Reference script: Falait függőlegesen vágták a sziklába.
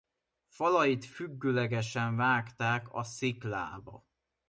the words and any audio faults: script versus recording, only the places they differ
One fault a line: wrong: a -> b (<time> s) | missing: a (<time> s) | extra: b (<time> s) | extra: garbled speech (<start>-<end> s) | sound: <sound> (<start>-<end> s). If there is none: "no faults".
no faults